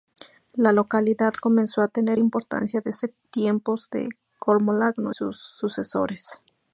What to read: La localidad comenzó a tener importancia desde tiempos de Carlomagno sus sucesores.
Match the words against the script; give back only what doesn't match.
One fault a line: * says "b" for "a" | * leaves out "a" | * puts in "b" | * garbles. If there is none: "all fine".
all fine